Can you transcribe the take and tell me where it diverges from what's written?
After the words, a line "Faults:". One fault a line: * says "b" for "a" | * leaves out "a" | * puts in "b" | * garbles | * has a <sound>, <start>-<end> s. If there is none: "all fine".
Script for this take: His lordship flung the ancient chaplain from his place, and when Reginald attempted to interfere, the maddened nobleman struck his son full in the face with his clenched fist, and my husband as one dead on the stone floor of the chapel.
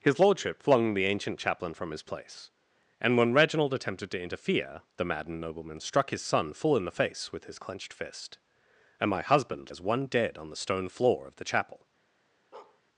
His lordship flung the ancient chaplain from his place, and when Reginald attempted to interfere, the maddened nobleman struck his son full in the face with his clenched fist, and my husband as one dead on the stone floor of the chapel.
Faults:
* has a bark, 12.5-12.8 s